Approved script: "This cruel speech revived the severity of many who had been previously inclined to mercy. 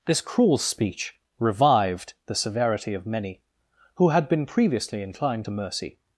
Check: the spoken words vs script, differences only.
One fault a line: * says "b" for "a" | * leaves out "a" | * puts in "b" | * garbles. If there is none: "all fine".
all fine